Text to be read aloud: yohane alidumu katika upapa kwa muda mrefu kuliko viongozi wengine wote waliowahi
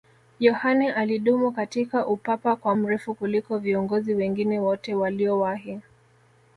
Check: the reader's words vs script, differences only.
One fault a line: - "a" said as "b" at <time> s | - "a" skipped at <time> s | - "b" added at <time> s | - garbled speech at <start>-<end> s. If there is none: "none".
- "muda" skipped at 2.7 s